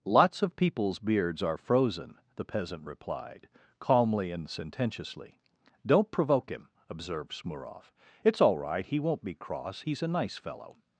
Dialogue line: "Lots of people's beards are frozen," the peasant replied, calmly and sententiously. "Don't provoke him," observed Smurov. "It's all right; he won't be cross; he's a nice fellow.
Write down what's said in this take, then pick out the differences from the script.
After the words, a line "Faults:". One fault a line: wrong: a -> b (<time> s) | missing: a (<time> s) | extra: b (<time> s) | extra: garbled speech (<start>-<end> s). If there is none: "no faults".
"Lots of people's beards are frozen," the peasant replied, calmly and sententiously. "Don't provoke him," observed Smurov. "It's all right; he won't be cross; he's a nice fellow.
Faults:
no faults